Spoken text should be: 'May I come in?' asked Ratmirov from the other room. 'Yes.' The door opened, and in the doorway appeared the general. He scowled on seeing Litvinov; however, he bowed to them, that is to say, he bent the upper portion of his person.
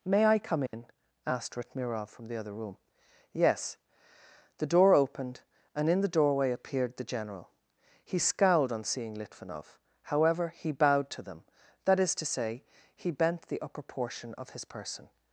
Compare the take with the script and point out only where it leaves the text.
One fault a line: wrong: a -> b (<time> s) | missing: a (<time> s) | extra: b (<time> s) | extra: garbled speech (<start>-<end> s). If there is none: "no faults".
no faults